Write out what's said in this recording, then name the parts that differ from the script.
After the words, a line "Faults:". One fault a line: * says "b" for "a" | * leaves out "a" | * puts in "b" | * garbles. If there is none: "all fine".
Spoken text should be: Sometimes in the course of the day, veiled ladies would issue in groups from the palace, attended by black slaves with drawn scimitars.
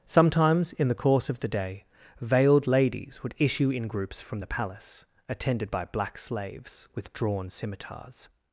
Sometimes in the course of the day, veiled ladies would issue in groups from the palace, attended by black slaves with drawn scimitars.
Faults:
all fine